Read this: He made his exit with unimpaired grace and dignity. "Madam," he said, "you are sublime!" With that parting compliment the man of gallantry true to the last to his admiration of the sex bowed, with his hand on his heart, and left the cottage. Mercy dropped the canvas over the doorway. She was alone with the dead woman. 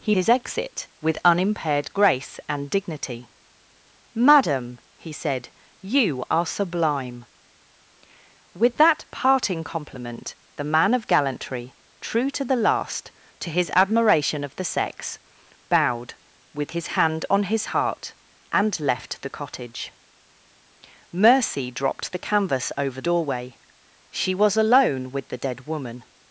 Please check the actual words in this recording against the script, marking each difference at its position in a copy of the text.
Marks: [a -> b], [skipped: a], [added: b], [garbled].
He [skipped: made] his exit with unimpaired grace and dignity. "Madam," he said, "you are sublime!" With that parting compliment the man of gallantry true to the last to his admiration of the sex bowed, with his hand on his heart, and left the cottage. Mercy dropped the canvas over [skipped: the] doorway. She was alone with the dead woman.